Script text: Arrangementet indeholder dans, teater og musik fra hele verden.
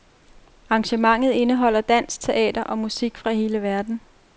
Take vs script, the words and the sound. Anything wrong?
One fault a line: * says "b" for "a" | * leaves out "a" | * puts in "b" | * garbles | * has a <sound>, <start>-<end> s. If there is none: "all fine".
all fine